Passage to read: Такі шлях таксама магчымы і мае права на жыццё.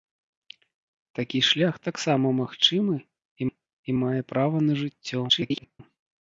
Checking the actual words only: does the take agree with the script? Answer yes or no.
no